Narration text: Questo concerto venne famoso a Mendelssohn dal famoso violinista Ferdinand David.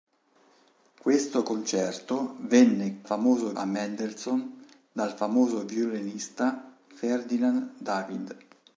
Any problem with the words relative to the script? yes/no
no